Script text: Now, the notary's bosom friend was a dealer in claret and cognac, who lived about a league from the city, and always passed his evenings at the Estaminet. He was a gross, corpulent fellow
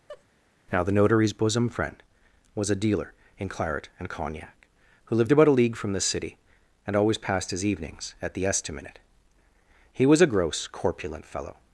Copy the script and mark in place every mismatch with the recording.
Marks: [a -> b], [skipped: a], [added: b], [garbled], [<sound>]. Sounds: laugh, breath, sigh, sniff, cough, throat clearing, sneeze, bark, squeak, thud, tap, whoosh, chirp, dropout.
[laugh] Now, the notary's bosom friend was a dealer in claret and cognac, who lived about a league from the city, and always passed his evenings at the Estaminet. He was a gross, corpulent fellow